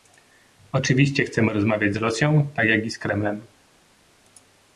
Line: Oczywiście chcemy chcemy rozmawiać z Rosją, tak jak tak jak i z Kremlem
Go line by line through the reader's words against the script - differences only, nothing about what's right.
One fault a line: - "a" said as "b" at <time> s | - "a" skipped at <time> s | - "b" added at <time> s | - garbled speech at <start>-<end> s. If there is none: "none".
- "chcemy" skipped at 1.5 s
- "tak jak" skipped at 2.8 s